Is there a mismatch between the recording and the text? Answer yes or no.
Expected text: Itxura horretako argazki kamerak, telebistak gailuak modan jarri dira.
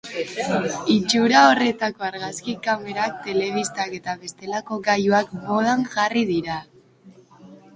yes